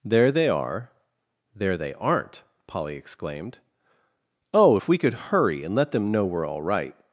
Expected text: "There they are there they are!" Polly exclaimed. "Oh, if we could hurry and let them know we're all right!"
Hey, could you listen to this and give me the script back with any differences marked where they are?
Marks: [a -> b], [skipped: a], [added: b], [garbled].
"There they are there they [are!" -> aren't] Polly exclaimed. "Oh, if we could hurry and let them know we're all right!"